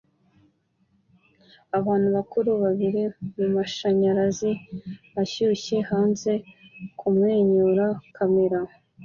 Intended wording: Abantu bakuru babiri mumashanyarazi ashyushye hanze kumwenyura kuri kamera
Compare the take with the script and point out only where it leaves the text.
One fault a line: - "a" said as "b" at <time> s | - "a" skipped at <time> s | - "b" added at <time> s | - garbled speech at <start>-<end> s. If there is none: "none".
- "kuri" skipped at 7.8 s